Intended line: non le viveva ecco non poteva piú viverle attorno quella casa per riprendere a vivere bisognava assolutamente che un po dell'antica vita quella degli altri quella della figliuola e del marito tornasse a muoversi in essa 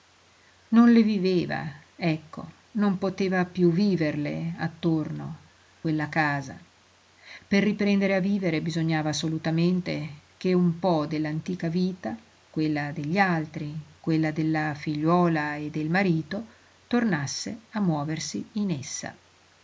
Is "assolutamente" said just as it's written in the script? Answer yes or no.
yes